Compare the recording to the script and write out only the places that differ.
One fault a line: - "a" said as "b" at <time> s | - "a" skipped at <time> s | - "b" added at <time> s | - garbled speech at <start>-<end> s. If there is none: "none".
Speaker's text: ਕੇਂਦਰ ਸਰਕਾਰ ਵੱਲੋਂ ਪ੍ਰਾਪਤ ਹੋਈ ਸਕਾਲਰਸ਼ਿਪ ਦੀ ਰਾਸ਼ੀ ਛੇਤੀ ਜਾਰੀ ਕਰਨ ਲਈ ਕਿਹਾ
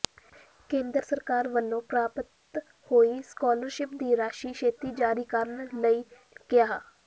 none